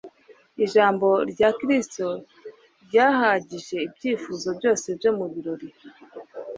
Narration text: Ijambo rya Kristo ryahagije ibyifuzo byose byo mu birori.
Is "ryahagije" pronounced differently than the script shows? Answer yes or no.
no